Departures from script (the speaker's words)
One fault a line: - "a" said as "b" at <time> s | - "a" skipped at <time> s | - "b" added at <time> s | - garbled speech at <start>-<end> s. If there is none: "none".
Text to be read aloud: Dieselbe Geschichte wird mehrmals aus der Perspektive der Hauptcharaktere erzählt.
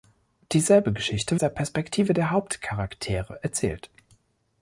- "wird mehrmals aus" skipped at 1.4 s